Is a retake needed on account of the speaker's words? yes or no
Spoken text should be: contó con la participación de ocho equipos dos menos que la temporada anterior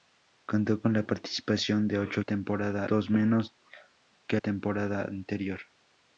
yes